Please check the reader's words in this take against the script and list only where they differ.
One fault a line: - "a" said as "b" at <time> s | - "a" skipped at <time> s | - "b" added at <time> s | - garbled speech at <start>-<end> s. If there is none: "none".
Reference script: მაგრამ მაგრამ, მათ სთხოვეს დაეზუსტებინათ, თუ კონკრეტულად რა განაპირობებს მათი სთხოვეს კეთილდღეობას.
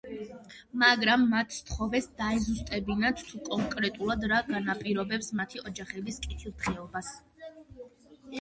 - "მაგრამ" skipped at 1.2 s
- "სთხოვეს" said as "ოჯახების" at 5.7 s